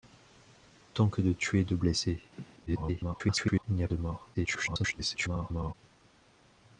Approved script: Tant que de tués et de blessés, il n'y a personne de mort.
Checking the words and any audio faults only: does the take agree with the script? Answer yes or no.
no